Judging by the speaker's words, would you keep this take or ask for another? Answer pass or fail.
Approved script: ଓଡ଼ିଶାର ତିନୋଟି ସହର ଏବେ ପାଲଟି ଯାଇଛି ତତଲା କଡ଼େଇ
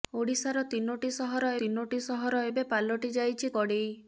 fail